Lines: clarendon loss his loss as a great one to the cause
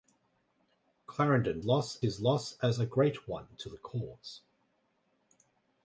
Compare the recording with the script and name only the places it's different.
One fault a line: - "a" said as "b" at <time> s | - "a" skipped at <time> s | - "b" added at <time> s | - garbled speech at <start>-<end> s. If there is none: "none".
none